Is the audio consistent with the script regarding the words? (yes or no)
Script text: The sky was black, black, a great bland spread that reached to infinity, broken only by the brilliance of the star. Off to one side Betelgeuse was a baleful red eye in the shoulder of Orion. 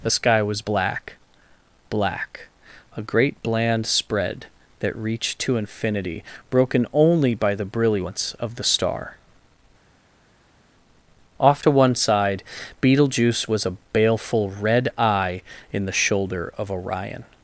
yes